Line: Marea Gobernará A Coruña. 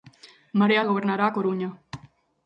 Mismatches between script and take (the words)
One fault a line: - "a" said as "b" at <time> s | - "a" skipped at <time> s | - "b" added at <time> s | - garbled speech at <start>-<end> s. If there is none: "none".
none